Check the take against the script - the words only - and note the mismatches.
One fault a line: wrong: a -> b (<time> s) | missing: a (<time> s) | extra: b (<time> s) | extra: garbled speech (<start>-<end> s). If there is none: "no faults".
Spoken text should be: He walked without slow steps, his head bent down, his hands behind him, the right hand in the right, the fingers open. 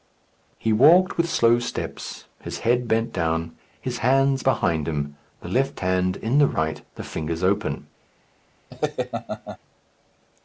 wrong: without -> with (1.1 s)
wrong: right -> left (5.5 s)